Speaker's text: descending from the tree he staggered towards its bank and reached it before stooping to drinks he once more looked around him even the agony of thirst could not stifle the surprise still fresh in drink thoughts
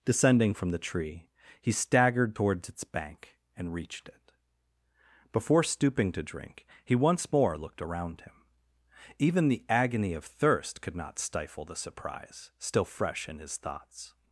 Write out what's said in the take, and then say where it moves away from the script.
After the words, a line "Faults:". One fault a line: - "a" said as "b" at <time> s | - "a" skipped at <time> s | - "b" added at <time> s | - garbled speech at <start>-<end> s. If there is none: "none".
descending from the tree he staggered towards its bank and reached it before stooping to drink he once more looked around him even the agony of thirst could not stifle the surprise still fresh in his thoughts
Faults:
- "drinks" said as "drink" at 6.2 s
- "drink" said as "his" at 13.4 s